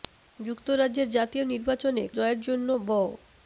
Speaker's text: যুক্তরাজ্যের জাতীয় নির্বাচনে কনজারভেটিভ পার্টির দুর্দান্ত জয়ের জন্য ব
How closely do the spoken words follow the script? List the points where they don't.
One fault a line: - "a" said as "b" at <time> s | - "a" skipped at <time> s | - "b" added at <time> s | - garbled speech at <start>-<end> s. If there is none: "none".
- "কনজারভেটিভ পার্টির দুর্দান্ত" skipped at 2.0 s